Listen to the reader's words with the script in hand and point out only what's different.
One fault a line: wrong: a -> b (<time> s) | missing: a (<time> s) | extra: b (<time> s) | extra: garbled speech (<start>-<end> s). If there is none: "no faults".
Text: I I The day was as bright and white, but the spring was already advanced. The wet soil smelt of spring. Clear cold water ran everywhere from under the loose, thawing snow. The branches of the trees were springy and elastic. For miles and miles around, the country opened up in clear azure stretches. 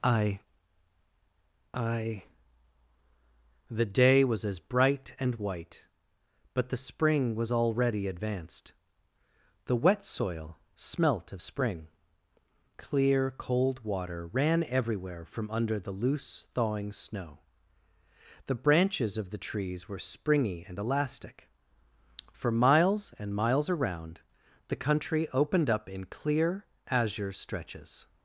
no faults